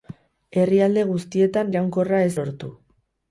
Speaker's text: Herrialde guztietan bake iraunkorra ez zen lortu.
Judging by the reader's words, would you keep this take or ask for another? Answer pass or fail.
fail